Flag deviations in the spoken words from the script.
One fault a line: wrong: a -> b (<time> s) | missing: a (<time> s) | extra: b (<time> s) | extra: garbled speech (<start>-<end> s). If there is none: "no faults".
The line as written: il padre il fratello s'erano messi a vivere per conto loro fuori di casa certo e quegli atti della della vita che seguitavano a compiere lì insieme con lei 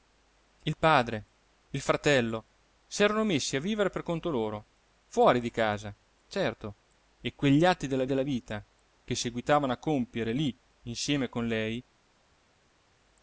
no faults